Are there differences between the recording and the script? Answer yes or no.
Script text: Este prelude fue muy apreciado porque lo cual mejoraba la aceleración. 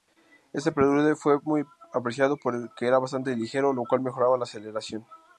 yes